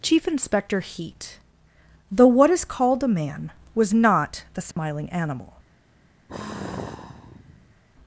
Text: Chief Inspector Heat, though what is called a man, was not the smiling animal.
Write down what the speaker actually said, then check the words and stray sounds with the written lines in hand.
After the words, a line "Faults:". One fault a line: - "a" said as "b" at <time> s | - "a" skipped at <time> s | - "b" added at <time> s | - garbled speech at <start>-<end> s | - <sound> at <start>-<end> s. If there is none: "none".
Chief Inspector Heat, though what is called a man, was not the smiling animal.
Faults:
- dropout at 4.7-4.8 s
- sigh at 6.3-7.8 s